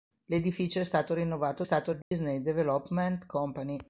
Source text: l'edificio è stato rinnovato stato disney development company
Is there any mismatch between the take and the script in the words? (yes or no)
no